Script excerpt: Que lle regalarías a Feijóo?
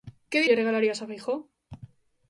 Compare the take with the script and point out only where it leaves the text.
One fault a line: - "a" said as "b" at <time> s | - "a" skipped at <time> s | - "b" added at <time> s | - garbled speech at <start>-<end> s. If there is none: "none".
none